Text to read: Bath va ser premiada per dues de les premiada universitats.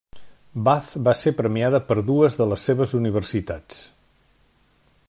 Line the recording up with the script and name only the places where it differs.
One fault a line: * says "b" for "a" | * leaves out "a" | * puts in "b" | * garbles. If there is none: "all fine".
* says "seves" for "premiada"